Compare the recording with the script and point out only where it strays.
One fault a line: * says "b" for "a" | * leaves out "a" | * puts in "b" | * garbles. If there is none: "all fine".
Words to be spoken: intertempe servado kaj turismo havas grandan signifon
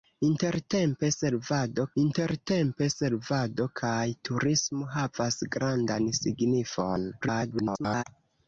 * puts in "intertempe servado"
* garbles